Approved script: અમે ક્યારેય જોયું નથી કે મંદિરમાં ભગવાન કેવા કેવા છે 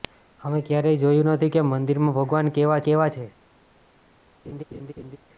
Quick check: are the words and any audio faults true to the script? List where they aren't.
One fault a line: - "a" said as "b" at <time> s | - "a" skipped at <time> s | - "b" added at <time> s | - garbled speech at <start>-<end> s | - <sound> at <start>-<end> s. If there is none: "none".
- laugh at 4.4-5.2 s